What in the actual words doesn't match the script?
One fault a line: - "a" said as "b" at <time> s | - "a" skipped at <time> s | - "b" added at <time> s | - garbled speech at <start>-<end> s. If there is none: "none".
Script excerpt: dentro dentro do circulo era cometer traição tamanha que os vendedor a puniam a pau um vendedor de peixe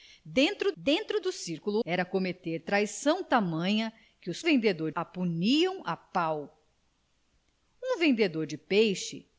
none